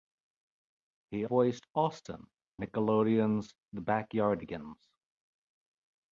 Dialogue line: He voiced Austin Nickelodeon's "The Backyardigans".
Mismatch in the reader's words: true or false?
false